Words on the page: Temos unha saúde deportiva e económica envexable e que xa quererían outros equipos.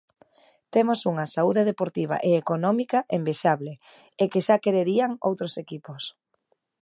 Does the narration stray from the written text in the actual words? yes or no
no